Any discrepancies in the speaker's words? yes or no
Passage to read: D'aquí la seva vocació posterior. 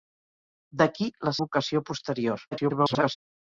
yes